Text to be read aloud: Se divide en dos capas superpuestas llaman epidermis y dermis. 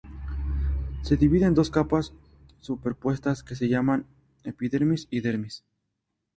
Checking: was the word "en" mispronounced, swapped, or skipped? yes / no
no